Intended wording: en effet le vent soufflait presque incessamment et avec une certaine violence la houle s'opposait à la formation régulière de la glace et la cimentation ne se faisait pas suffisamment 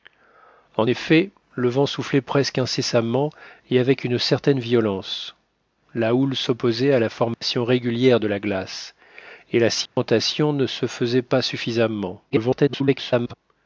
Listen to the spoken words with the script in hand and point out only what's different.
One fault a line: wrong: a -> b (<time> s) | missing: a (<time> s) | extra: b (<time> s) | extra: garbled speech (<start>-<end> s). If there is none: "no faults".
extra: garbled speech (12.3-13.3 s)